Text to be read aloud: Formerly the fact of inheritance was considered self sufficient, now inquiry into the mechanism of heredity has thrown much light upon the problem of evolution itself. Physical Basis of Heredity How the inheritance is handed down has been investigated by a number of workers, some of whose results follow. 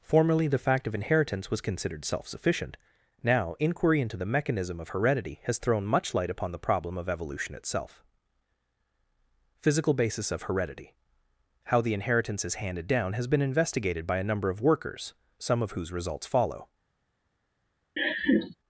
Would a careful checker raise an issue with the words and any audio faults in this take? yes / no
yes